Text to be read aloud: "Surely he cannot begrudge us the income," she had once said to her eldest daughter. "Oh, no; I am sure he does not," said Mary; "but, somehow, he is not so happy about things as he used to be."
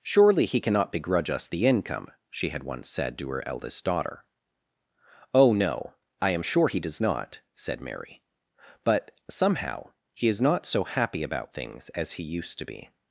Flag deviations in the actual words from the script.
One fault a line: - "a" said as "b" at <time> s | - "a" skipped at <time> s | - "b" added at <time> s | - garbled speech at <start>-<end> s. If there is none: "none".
none